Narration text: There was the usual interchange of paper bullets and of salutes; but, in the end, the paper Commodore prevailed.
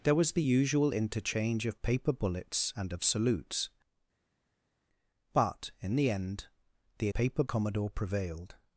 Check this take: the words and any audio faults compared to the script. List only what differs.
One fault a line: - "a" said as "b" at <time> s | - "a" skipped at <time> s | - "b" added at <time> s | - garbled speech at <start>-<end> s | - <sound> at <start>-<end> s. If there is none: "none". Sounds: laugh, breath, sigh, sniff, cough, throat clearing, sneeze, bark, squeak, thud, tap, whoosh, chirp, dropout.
none